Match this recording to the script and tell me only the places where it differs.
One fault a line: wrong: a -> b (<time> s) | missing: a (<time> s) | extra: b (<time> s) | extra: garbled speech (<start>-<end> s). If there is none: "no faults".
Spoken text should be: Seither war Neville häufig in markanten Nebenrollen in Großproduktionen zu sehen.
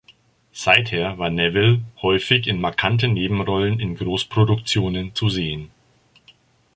no faults